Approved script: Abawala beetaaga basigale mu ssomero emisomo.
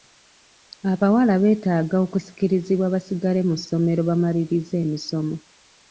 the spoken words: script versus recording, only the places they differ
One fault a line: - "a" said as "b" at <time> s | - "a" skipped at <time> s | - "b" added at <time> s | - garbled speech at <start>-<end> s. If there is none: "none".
- "okusikirizibwa" added at 2.0 s
- "bamalirize" added at 4.1 s